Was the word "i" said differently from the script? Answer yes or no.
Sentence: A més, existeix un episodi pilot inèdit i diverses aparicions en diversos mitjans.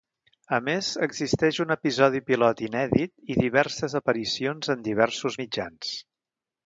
no